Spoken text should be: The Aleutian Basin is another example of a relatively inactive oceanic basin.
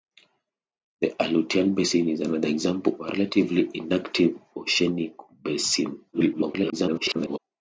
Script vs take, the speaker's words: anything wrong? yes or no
yes